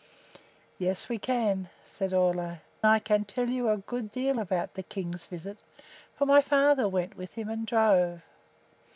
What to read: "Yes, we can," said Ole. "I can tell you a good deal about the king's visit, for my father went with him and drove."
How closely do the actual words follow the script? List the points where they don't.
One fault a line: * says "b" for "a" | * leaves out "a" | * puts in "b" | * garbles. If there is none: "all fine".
all fine